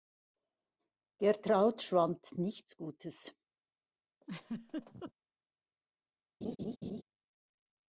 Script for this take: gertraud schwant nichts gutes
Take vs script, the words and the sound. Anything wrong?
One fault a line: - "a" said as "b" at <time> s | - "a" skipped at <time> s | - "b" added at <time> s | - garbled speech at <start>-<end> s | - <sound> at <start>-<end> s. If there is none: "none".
- laugh at 4.2-5.1 s
- laugh at 6.4-7.0 s